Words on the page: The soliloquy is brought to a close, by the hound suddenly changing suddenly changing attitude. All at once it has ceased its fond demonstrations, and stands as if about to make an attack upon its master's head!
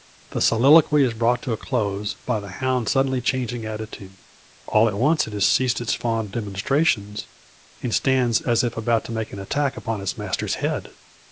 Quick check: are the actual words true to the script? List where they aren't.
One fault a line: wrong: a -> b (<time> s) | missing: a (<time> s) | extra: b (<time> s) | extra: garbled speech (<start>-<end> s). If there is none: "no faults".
missing: suddenly changing (3.6 s)